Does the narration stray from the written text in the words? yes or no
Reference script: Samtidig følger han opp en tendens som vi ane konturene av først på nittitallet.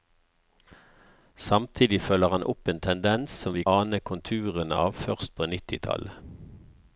no